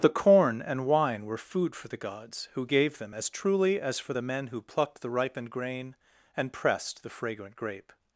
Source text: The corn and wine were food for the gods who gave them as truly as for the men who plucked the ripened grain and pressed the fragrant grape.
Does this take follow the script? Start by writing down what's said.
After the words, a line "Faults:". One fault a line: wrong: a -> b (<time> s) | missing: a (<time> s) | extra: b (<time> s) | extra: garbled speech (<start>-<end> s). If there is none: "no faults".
The corn and wine were food for the gods who gave them as truly as for the men who plucked the ripened grain and pressed the fragrant grape.
Faults:
no faults